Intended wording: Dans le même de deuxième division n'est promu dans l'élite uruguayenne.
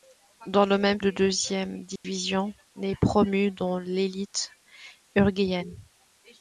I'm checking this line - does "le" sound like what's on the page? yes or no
yes